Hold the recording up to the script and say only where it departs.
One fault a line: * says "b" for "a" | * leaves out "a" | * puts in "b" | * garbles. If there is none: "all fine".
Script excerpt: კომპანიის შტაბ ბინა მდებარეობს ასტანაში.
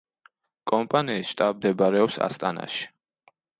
* leaves out "ბინა"